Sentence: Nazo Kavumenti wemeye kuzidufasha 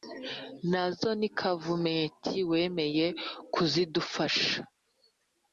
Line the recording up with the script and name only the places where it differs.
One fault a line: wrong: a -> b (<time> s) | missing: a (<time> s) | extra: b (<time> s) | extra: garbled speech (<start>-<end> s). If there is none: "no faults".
extra: ni (1.2 s)